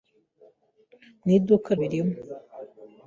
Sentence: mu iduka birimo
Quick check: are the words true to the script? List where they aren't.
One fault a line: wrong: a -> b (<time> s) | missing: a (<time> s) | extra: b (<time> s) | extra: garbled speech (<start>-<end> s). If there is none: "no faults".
no faults